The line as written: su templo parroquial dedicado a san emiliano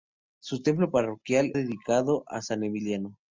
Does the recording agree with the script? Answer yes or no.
yes